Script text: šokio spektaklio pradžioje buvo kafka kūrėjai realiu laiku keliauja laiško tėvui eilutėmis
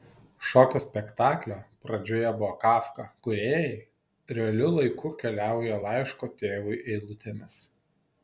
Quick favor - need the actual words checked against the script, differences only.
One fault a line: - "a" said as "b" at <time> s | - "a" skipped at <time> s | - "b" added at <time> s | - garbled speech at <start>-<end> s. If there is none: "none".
none